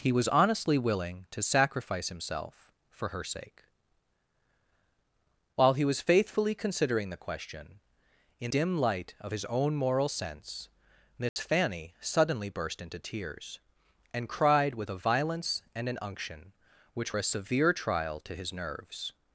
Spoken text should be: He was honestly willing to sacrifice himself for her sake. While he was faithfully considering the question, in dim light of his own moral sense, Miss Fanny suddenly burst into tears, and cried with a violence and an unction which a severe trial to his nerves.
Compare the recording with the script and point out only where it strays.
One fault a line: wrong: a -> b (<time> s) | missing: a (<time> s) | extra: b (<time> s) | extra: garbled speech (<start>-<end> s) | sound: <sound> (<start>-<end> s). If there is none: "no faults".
sound: dropout (11.3-11.4 s)